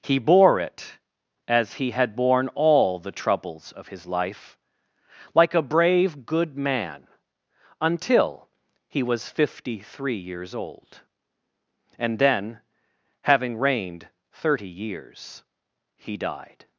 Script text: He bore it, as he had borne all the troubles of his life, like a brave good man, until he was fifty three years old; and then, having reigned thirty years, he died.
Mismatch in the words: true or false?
false